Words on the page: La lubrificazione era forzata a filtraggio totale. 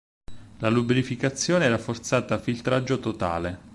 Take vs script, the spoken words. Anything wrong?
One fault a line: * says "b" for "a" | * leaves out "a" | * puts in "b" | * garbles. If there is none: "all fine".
all fine